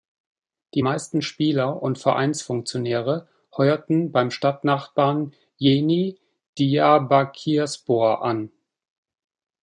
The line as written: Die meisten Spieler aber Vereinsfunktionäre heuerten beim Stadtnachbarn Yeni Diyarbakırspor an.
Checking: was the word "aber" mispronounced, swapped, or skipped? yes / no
yes